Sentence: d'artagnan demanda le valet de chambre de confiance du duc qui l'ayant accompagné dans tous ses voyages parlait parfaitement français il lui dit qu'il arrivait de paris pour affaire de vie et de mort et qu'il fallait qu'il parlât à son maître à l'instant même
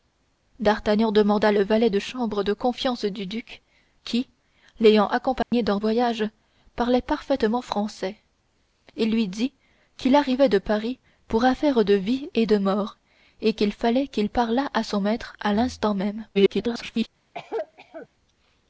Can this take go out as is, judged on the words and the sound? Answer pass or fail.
fail